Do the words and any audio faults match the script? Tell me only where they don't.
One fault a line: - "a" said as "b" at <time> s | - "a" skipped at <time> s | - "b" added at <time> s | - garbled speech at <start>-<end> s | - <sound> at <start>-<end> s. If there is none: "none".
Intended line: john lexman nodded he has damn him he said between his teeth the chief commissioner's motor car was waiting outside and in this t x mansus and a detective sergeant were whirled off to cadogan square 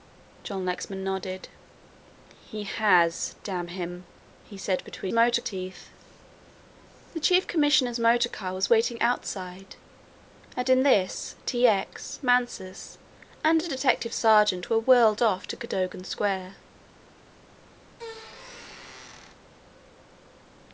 - "his" said as "motor" at 5.1 s
- squeak at 17.9-19.4 s